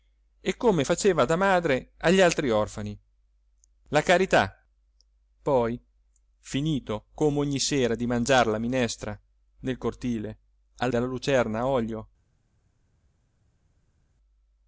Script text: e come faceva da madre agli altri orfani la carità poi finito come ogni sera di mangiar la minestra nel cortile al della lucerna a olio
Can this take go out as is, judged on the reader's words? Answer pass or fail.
pass